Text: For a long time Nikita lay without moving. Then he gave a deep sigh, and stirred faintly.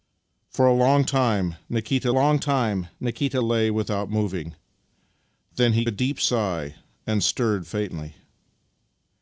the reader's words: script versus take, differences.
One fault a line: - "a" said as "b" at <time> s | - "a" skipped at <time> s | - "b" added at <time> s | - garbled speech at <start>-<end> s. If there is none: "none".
- "long time Nikita" added at 2.1 s
- "gave" skipped at 5.8 s